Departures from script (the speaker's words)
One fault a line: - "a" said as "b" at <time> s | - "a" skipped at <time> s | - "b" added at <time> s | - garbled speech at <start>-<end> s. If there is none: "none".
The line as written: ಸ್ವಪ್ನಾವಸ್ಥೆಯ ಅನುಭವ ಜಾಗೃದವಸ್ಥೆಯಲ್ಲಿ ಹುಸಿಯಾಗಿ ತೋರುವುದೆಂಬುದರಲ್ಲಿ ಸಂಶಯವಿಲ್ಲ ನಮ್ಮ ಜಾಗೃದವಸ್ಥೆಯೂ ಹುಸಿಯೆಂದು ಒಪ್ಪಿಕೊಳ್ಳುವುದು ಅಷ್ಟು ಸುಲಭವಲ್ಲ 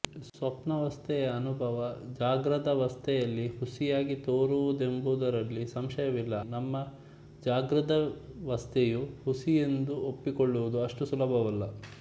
none